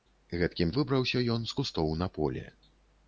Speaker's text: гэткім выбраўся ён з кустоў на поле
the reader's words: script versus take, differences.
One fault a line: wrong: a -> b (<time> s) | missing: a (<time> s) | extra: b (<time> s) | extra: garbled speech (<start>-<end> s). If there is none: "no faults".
no faults